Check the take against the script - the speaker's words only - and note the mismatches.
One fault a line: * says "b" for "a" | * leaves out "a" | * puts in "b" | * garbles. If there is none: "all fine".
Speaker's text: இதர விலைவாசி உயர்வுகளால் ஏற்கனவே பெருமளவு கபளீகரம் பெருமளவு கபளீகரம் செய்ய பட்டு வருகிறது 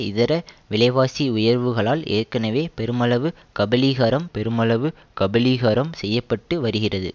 all fine